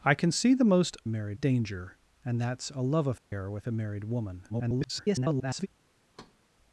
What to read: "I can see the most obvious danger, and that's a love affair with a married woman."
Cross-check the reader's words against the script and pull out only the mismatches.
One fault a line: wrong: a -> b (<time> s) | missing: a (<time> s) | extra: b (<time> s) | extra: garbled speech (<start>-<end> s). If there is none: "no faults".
wrong: obvious -> married (1.1 s)
extra: garbled speech (4.5-5.7 s)